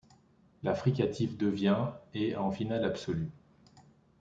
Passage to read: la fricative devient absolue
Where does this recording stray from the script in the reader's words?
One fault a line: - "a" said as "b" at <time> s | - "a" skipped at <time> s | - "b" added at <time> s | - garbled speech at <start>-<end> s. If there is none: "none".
- "et en finale" added at 2.1 s